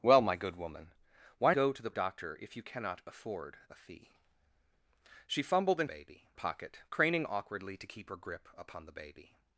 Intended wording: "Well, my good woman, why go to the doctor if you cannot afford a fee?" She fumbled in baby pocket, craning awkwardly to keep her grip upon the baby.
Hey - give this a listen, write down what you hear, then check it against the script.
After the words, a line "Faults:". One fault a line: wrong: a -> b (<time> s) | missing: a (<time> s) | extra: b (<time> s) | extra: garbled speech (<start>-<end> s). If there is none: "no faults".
"Well, my good woman, why go to the doctor if you cannot afford a fee?" She fumbled in baby pocket, craning awkwardly to keep her grip upon the baby.
Faults:
no faults